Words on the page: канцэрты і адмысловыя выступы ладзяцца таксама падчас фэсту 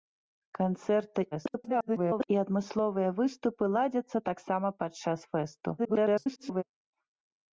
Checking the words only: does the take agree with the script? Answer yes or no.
no